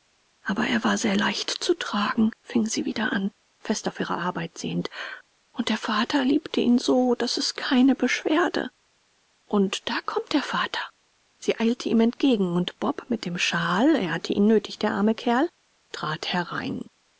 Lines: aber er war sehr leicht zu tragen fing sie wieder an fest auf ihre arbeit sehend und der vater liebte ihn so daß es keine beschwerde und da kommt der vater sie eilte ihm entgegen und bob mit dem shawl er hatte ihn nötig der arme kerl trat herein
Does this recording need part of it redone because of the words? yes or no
no